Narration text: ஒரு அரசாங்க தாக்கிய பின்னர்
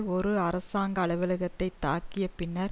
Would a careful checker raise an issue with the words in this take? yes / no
yes